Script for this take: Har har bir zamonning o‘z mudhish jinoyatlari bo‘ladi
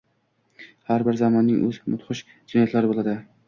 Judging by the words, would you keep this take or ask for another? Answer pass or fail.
fail